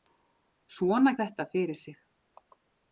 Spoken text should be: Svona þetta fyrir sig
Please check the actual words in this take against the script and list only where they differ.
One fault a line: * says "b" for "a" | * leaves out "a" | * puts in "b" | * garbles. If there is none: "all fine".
all fine